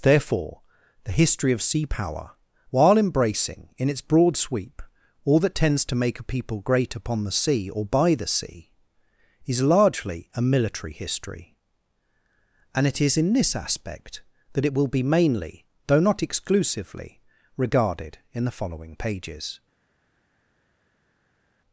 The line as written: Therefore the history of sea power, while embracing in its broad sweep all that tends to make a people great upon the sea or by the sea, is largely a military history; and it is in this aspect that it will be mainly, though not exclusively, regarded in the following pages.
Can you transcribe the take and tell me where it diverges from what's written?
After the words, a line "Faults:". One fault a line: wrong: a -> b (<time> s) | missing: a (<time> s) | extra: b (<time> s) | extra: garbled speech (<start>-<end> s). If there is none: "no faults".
Therefore the history of sea power, while embracing in its broad sweep all that tends to make a people great upon the sea or by the sea, is largely a military history; and it is in this aspect that it will be mainly, though not exclusively, regarded in the following pages.
Faults:
no faults